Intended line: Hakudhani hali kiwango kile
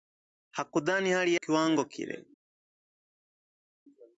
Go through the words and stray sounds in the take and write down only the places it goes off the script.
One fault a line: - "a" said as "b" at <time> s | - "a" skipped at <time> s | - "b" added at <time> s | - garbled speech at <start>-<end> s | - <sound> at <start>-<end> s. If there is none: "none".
none